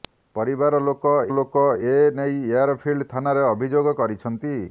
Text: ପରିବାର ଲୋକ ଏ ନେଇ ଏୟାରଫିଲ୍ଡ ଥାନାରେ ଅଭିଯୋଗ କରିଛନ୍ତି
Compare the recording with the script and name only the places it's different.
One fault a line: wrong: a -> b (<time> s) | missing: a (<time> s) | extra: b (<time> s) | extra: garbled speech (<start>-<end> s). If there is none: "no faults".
extra: ଲୋକ (1.4 s)